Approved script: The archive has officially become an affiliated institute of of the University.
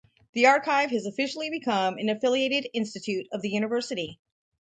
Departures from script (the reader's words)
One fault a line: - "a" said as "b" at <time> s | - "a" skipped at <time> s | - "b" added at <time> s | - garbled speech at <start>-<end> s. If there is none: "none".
- "of" skipped at 3.4 s